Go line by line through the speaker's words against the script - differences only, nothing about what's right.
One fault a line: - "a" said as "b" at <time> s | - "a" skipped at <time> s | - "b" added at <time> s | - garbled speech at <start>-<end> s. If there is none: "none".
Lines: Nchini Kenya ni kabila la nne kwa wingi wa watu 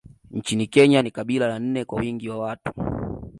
none